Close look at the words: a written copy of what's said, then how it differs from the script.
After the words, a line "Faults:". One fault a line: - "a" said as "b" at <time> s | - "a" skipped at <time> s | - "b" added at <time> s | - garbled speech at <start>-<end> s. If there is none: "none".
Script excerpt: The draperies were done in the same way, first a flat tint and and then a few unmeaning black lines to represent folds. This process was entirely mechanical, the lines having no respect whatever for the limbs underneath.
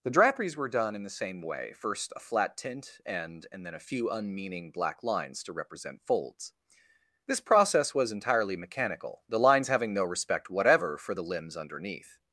The draperies were done in the same way, first a flat tint and and then a few unmeaning black lines to represent folds. This process was entirely mechanical, the lines having no respect whatever for the limbs underneath.
Faults:
none